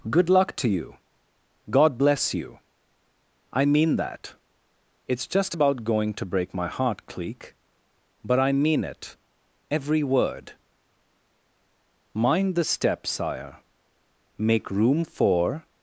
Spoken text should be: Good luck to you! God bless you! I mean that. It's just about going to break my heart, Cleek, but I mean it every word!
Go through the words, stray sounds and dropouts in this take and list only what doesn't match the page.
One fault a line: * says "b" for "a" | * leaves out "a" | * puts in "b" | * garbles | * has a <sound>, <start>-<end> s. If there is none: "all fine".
* puts in "Mind the step Sire Make room for"